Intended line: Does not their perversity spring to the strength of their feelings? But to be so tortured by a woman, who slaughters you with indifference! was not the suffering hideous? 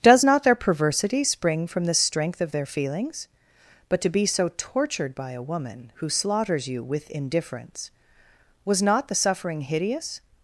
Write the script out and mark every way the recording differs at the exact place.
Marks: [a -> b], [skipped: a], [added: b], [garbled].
Does not their perversity spring [to -> from] the strength of their feelings? But to be so tortured by a woman, who slaughters you with indifference! was not the suffering hideous?